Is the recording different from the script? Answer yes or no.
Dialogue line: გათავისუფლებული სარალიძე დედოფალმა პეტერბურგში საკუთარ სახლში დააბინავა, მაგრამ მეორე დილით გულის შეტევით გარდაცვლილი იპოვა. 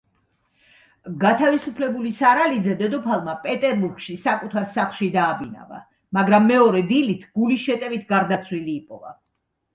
no